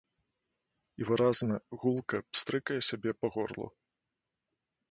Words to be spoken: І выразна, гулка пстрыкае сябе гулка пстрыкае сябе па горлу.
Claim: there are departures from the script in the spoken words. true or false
true